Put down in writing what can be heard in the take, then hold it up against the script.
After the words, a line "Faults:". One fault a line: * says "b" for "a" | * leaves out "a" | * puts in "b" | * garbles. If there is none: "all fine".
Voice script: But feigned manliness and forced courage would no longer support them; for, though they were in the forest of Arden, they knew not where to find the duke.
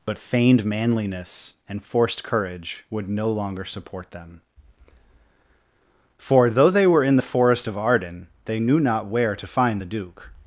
But feigned manliness and forced courage would no longer support them; for, though they were in the forest of Arden, they knew not where to find the duke.
Faults:
all fine